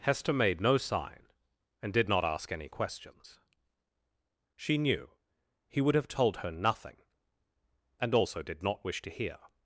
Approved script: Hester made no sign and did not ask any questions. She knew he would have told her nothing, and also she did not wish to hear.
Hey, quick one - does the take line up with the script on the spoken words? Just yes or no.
no